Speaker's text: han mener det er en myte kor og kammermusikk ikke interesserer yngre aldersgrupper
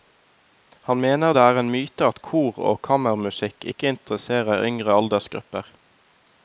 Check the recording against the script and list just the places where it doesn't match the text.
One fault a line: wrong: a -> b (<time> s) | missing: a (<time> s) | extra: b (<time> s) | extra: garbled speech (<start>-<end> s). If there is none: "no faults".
extra: at (2.1 s)